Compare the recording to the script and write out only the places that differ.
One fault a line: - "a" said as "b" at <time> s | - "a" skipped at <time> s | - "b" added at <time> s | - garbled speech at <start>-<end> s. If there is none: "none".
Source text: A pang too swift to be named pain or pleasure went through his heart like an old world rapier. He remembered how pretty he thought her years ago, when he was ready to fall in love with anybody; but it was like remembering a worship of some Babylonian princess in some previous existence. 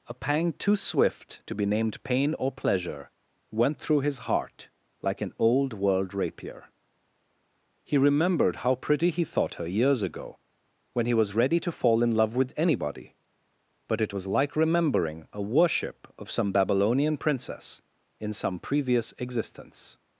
none